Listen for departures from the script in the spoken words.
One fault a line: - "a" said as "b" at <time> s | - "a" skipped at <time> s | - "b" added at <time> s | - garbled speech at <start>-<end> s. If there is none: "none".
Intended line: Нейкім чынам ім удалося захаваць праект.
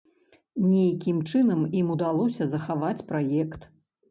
none